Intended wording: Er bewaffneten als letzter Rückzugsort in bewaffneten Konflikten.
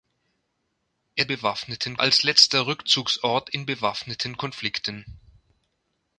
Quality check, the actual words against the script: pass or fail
pass